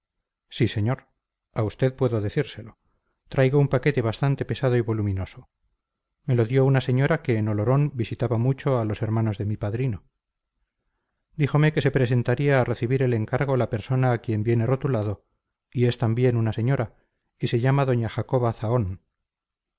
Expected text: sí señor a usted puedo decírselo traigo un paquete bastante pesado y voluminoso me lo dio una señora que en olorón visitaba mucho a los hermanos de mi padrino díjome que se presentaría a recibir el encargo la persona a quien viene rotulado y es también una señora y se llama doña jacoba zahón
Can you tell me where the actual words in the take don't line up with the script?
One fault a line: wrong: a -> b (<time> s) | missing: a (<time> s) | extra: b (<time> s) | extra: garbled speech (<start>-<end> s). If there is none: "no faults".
no faults